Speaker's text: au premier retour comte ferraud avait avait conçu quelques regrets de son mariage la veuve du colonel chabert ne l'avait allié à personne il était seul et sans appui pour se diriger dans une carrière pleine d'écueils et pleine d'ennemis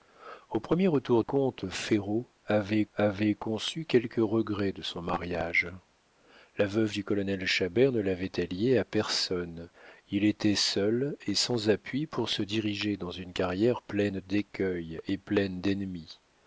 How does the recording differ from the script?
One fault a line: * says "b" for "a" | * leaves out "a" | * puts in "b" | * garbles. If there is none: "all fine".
all fine